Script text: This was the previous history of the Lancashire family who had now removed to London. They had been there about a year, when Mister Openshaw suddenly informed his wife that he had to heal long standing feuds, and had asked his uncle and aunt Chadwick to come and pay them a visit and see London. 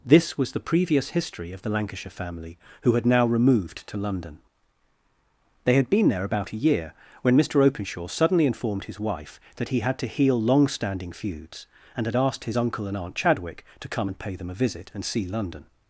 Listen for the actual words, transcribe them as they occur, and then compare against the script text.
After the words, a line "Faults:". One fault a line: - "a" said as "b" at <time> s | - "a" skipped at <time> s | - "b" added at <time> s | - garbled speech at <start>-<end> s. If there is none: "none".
This was the previous history of the Lancashire family who had now removed to London. They had been there about a year, when Mister Openshaw suddenly informed his wife that he had to heal long standing feuds, and had asked his uncle and aunt Chadwick to come and pay them a visit and see London.
Faults:
none